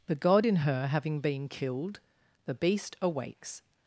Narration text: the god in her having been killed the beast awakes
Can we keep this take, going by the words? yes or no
yes